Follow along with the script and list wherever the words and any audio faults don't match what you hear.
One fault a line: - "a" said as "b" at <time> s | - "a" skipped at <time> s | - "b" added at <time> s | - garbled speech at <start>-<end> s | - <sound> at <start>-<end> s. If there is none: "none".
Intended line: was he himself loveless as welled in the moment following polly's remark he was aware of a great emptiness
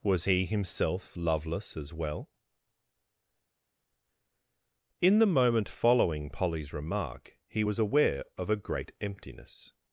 - "welled" said as "well" at 1.9 s